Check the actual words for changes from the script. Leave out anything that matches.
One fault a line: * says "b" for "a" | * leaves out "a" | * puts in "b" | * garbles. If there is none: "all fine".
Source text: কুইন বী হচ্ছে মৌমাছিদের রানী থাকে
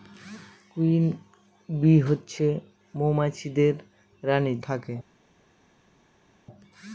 all fine